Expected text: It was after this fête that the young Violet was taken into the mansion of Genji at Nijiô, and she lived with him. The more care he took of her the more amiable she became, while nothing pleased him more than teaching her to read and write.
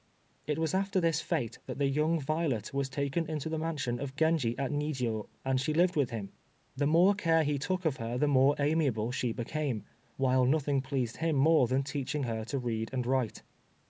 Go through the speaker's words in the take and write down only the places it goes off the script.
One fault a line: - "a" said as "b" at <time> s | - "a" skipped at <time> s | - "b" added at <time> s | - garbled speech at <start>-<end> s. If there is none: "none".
none